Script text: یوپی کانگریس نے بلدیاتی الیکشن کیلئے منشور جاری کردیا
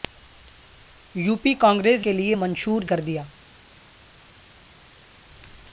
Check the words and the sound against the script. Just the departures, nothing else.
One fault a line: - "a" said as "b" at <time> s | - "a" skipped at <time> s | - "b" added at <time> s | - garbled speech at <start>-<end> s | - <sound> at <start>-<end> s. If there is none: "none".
- "نے بلدیاتی الیکشن" skipped at 2.0 s
- "جاری" skipped at 2.8 s